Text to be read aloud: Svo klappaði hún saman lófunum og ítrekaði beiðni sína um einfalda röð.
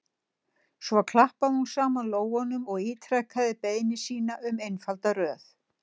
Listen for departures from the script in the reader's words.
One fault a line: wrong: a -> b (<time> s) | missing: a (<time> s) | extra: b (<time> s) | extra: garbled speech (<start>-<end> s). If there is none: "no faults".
no faults